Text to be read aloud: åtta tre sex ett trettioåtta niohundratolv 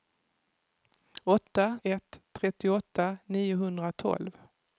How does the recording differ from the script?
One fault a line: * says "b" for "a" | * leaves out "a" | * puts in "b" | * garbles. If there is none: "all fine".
* leaves out "tre sex"